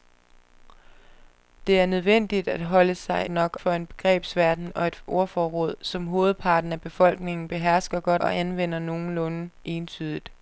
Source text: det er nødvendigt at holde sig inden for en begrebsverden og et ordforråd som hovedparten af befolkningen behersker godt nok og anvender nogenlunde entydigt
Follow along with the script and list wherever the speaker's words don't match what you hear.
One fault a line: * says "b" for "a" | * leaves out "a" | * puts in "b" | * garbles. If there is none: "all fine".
* says "nok" for "inden"
* leaves out "nok"